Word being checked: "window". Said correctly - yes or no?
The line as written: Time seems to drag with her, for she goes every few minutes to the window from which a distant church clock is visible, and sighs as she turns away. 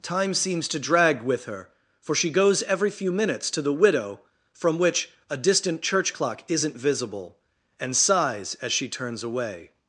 no